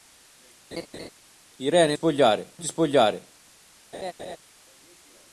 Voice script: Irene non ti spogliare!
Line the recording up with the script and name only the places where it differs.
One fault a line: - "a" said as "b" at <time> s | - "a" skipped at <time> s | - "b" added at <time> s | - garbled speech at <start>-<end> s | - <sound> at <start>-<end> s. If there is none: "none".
- laugh at 0.7-1.1 s
- "non" said as "spogliare" at 1.9 s
- laugh at 3.9-4.4 s